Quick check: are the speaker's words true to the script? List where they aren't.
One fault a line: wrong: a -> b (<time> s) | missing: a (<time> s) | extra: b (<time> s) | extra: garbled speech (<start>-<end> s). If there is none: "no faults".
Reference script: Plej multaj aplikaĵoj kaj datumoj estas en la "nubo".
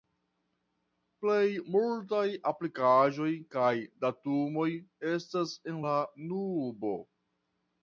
no faults